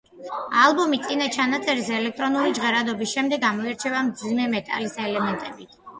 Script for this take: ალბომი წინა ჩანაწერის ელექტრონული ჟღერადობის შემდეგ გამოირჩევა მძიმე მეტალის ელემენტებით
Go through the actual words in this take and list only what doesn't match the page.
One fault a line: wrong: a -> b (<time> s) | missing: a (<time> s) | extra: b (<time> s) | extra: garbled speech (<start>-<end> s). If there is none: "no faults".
no faults